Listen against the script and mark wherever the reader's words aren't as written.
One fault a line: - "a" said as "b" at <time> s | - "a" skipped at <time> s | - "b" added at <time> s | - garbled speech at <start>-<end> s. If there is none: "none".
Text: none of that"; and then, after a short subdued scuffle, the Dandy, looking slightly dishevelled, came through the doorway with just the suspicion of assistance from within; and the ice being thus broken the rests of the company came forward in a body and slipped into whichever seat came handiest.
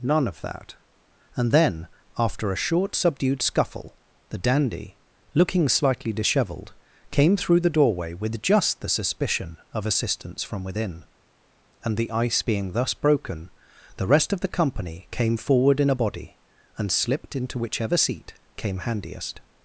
- "rests" said as "rest" at 14.1 s